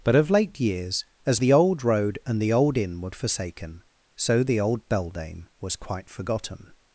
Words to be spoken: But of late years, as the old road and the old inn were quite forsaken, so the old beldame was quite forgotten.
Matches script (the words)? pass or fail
fail